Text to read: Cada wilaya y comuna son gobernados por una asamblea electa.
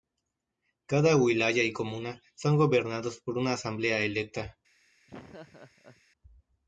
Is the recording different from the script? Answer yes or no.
no